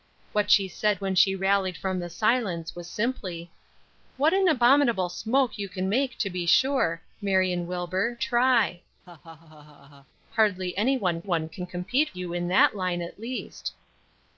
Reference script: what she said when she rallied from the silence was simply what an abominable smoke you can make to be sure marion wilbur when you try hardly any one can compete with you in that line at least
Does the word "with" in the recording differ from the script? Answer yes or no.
yes